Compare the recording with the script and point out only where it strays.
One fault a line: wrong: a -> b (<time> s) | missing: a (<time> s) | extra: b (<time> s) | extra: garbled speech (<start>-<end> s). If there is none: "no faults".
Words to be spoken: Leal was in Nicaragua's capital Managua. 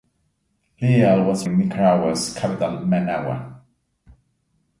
no faults